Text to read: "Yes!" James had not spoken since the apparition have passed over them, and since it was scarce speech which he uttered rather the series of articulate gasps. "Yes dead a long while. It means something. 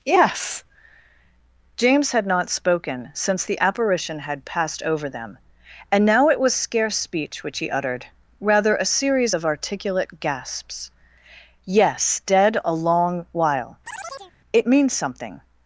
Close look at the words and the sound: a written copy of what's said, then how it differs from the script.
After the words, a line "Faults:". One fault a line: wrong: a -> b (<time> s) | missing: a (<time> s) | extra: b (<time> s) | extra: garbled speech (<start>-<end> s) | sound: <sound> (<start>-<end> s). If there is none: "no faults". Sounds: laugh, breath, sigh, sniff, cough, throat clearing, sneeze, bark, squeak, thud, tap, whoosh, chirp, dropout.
"Yes!" James had not spoken since the apparition had passed over them, and now it was scarce speech which he uttered rather a series of articulate gasps. "Yes dead a long while. It means something.
Faults:
wrong: have -> had (4.2 s)
wrong: since -> now (6.0 s)
wrong: the -> a (8.8 s)
sound: chirp (13.9-14.3 s)